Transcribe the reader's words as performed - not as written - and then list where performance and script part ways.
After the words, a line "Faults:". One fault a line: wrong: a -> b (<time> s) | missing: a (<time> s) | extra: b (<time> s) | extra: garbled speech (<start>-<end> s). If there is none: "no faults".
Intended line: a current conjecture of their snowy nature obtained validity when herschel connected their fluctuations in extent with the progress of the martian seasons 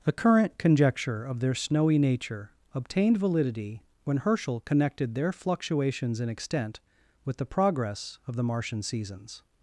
the current conjecture of their snowy nature obtained validity when herschel connected their fluctuations in extent with the progress of the martian seasons
Faults:
wrong: a -> the (0.0 s)